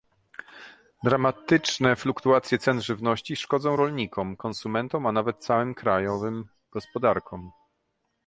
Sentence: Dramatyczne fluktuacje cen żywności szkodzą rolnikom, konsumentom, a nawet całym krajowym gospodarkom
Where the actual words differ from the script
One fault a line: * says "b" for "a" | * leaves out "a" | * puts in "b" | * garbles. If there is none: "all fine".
all fine